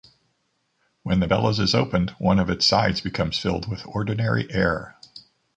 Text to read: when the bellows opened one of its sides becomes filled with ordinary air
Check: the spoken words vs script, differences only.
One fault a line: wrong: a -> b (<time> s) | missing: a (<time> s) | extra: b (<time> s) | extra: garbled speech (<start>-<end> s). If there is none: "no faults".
extra: is (1.6 s)